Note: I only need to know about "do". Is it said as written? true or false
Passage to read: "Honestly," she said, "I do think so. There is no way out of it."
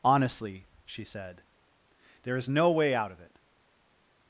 false